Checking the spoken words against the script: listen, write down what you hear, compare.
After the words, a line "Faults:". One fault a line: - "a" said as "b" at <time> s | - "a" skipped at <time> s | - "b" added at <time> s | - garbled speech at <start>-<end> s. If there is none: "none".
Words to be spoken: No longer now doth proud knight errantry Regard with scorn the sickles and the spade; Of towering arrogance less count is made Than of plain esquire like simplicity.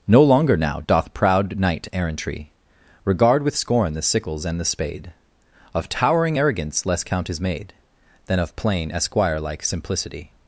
No longer now doth proud knight errantry Regard with scorn the sickles and the spade; Of towering arrogance less count is made Than of plain esquire like simplicity.
Faults:
none